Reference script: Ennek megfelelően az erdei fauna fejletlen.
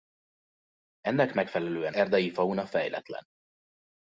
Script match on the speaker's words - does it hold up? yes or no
no